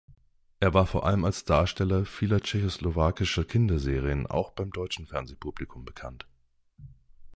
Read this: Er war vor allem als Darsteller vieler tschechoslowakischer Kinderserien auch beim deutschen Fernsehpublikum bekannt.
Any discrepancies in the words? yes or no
no